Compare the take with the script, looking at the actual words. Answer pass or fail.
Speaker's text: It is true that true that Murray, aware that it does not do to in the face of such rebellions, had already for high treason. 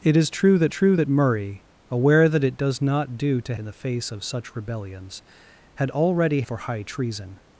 pass